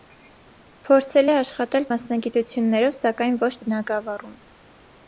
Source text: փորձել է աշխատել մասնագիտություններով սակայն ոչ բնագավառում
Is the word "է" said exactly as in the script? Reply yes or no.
yes